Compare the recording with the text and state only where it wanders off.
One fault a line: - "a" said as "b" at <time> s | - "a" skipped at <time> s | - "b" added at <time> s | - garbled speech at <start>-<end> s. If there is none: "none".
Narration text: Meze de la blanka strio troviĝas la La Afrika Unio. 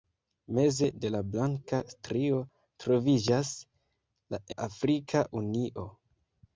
none